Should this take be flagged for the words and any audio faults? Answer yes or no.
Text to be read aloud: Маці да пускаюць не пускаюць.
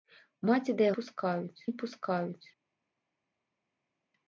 no